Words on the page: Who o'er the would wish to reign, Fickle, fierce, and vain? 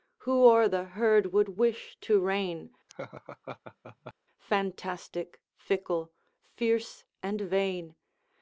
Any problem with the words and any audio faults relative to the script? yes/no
yes